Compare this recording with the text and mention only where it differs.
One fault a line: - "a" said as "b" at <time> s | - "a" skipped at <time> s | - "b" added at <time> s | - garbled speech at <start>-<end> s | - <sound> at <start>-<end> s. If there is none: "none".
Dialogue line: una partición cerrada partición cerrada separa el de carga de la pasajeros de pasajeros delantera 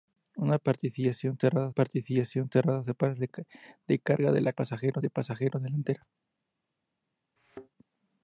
- thud at 7.4-7.7 s